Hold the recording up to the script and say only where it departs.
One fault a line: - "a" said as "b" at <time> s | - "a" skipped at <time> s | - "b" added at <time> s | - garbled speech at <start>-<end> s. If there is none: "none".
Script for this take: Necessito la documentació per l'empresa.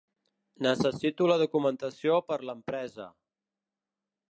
none